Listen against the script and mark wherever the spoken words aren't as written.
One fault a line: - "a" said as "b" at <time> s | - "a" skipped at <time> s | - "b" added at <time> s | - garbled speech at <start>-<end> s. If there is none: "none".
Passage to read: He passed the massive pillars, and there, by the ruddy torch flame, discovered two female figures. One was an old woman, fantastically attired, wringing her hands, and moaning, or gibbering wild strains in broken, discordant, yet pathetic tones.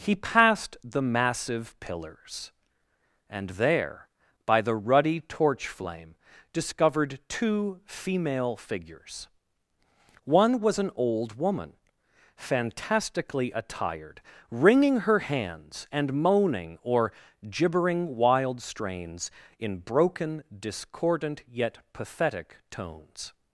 none